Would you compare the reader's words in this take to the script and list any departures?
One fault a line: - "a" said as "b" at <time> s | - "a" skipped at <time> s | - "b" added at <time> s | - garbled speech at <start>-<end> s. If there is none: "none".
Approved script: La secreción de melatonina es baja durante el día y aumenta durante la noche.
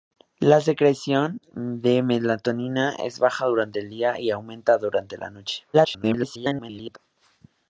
- garbled speech at 5.7-7.0 s